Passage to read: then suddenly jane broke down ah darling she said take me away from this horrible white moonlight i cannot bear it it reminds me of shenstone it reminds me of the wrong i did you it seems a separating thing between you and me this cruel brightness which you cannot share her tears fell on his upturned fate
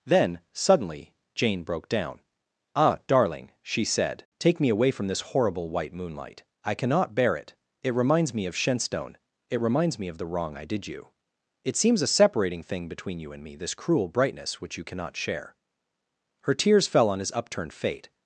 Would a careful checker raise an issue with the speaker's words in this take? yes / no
no